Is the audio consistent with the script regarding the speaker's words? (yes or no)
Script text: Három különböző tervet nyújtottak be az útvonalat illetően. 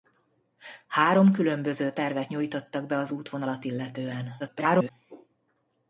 no